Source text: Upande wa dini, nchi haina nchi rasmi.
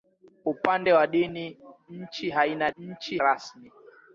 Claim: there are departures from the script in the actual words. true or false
false